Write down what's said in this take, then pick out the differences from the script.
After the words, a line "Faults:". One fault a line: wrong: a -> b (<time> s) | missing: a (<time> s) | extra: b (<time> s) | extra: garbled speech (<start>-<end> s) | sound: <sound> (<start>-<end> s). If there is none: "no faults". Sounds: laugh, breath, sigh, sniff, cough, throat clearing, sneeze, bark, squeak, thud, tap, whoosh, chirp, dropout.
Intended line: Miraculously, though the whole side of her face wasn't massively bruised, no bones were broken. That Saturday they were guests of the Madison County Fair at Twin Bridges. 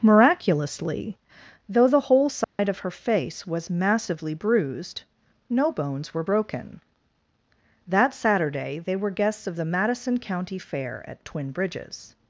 Miraculously, though the whole side of her face was massively bruised, no bones were broken. That Saturday they were guests of the Madison County Fair at Twin Bridges.
Faults:
sound: dropout (2.4-2.6 s)
wrong: wasn't -> was (3.5 s)